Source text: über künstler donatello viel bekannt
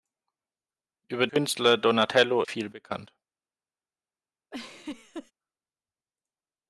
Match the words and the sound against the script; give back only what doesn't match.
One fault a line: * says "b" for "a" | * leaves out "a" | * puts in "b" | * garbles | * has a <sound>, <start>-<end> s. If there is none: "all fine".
* has a laugh, 4.5-5.3 s